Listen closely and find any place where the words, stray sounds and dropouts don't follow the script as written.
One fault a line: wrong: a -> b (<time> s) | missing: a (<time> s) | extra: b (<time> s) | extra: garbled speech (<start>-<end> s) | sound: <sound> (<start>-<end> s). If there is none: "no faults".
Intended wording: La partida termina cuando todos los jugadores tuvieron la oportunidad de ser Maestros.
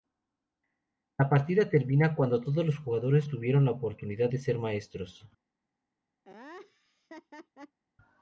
sound: laugh (6.2-7.8 s)